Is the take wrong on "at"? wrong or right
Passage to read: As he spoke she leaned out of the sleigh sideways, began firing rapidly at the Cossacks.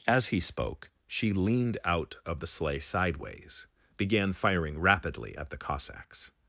right